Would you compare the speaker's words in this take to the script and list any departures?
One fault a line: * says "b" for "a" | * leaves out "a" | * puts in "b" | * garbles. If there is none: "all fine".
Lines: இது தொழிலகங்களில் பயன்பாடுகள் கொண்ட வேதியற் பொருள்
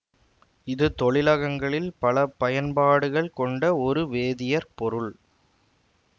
* puts in "பல"
* puts in "ஒரு"